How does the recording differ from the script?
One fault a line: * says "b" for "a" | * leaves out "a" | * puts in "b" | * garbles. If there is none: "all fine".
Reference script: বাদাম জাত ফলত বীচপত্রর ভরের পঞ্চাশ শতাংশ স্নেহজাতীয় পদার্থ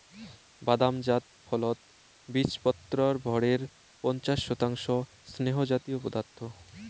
all fine